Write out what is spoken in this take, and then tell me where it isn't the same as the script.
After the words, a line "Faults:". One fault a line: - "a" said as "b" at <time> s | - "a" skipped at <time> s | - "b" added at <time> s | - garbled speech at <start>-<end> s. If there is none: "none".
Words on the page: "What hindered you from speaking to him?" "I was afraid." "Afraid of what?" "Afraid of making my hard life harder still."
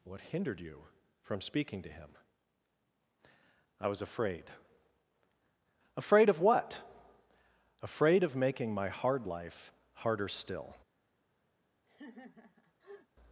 "What hindered you from speaking to him?" "I was afraid." "Afraid of what?" "Afraid of making my hard life harder still."
Faults:
none